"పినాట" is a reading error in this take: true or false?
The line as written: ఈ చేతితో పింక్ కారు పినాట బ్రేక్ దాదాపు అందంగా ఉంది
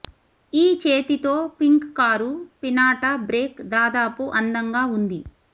false